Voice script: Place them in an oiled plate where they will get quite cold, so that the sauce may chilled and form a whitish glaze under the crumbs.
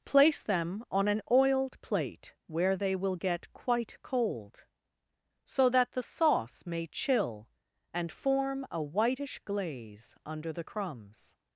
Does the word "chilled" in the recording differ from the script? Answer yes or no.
yes